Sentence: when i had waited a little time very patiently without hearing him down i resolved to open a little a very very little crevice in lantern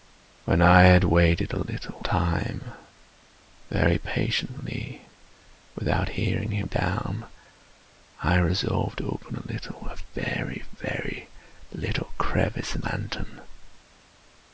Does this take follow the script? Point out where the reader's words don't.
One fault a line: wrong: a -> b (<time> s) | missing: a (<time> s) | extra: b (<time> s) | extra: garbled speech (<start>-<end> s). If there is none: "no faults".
no faults